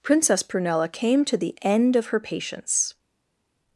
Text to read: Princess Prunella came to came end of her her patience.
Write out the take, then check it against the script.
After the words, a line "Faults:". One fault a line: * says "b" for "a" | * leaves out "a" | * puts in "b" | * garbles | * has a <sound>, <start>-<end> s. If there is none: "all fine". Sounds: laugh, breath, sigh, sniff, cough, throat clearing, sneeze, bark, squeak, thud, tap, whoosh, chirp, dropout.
Princess Prunella came to the end of her patience.
Faults:
* says "the" for "came"
* leaves out "her"